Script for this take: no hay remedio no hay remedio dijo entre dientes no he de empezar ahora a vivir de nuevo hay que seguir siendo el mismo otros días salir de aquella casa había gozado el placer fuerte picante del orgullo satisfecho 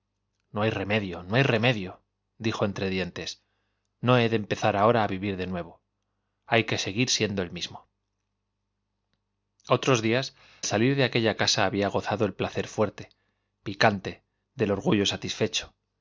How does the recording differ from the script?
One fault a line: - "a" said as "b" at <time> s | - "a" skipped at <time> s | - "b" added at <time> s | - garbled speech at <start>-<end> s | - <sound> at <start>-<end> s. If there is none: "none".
none